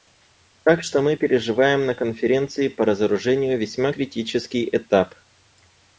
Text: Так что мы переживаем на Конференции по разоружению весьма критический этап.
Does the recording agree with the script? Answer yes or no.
yes